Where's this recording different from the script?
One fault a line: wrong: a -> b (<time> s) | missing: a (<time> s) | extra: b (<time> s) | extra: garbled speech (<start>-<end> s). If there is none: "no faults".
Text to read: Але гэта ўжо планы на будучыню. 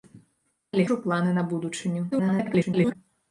missing: гэта (0.9 s)
extra: garbled speech (2.1-2.9 s)